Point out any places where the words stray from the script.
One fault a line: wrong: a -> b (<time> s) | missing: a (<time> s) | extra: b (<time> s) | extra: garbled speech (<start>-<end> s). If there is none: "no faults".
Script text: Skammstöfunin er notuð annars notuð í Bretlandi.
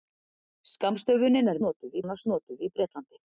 no faults